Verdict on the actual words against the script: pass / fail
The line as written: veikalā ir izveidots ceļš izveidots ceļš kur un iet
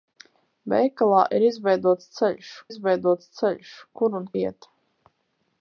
pass